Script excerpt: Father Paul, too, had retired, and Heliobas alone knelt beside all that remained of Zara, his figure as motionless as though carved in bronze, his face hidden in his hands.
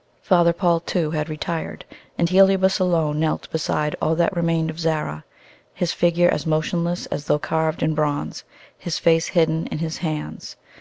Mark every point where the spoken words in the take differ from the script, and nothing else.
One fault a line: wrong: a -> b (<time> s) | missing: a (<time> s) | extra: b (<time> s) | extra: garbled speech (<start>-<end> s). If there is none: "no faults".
no faults